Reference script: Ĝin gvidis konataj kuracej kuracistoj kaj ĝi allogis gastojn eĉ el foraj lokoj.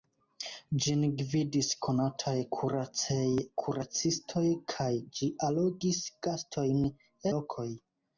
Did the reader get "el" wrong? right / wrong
wrong